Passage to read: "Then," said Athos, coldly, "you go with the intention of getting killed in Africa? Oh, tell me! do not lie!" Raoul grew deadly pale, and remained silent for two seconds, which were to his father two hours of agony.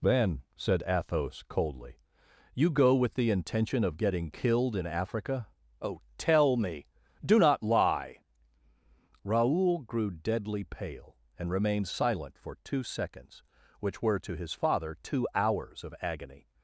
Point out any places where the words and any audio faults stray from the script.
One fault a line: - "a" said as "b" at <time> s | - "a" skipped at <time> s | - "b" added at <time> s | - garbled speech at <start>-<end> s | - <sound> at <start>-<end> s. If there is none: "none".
none